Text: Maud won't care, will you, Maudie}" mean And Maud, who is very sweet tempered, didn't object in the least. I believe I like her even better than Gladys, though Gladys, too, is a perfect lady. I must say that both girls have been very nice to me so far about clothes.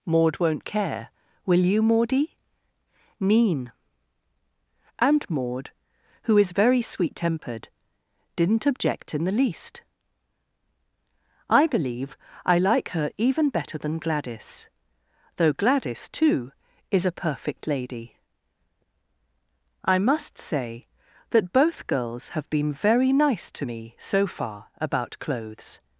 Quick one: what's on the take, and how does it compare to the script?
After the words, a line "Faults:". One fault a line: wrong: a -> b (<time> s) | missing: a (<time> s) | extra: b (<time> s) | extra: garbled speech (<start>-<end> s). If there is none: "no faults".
Maud won't care, will you, Maudie}" mean And Maud, who is very sweet tempered, didn't object in the least. I believe I like her even better than Gladys, though Gladys, too, is a perfect lady. I must say that both girls have been very nice to me so far about clothes.
Faults:
no faults